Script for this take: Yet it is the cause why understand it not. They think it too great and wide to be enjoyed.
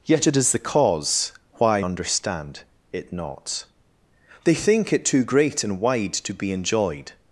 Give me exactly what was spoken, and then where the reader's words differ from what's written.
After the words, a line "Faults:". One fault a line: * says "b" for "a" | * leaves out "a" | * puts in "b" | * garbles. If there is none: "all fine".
Yet it is the cause why understand it not. They think it too great and wide to be enjoyed.
Faults:
all fine